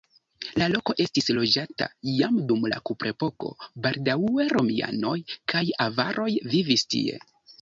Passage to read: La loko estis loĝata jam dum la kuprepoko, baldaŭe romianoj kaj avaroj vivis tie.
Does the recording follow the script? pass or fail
pass